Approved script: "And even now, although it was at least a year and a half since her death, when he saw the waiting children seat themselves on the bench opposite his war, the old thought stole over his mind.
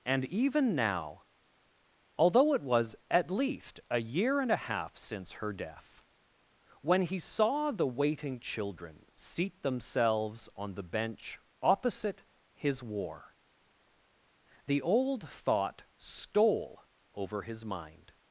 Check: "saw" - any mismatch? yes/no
no